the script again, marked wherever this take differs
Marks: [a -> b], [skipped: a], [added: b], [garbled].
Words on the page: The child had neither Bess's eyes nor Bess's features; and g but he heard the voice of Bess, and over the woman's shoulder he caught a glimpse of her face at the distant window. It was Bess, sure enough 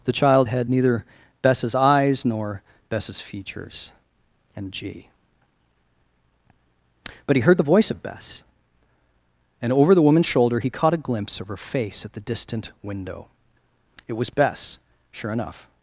The child had neither Bess's eyes nor Bess's features; and g but he heard the voice of Bess, and over the woman's shoulder he caught a glimpse of her face at the distant window. It was Bess, sure enough